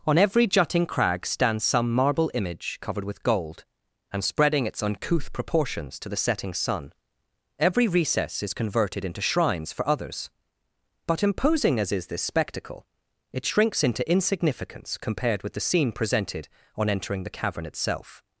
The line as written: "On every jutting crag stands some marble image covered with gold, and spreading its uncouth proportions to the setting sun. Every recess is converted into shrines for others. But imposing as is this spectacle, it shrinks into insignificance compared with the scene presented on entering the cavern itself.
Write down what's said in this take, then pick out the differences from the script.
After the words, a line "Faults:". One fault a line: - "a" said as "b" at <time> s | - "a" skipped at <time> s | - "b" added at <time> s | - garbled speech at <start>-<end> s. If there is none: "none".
"On every jutting crag stands some marble image covered with gold, and spreading its uncouth proportions to the setting sun. Every recess is converted into shrines for others. But imposing as is this spectacle, it shrinks into insignificance compared with the scene presented on entering the cavern itself.
Faults:
none